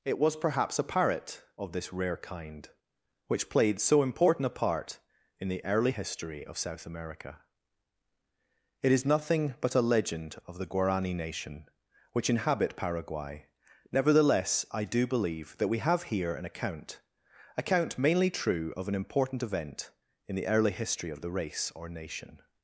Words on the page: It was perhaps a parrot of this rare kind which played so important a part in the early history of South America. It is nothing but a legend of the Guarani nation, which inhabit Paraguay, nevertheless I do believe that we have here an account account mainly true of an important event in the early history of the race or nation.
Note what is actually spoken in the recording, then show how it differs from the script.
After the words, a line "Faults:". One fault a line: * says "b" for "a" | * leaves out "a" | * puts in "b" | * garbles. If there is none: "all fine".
It was perhaps a parrot of this rare kind which played so important a part in the early history of South America. It is nothing but a legend of the Guarani nation, which inhabit Paraguay, nevertheless I do believe that we have here an account account mainly true of an important event in the early history of the race or nation.
Faults:
all fine